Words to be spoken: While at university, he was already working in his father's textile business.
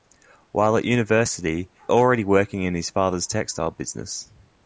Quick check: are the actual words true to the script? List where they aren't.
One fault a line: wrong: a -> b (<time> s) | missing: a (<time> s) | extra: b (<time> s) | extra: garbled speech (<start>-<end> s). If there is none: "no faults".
missing: he was (1.7 s)